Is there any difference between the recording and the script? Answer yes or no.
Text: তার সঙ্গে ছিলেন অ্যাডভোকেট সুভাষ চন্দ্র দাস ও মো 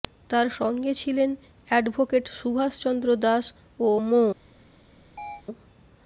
no